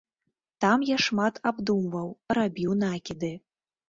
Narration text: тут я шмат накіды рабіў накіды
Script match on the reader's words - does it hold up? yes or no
no